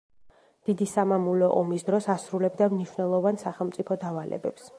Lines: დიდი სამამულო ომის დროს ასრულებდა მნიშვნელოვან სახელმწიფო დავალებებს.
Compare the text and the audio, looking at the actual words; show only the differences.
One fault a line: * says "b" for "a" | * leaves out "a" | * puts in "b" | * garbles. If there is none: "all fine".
all fine